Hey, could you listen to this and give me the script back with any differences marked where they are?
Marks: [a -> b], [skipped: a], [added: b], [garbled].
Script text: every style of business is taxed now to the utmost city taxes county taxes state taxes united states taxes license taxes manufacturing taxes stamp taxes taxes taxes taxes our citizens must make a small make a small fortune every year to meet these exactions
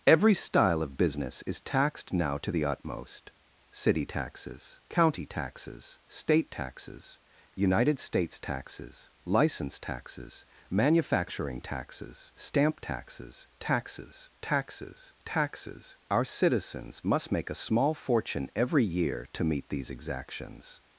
every style of business is taxed now to the utmost city taxes county taxes state taxes united states taxes license taxes manufacturing taxes stamp taxes taxes taxes taxes our citizens must make a small [skipped: make a small] fortune every year to meet these exactions